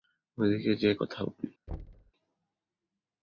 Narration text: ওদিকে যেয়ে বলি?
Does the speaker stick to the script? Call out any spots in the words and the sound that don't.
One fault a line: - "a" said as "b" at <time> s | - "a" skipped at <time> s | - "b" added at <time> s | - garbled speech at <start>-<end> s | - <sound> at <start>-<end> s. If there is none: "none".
- "কথা" added at 0.9 s
- thud at 1.7-2.1 s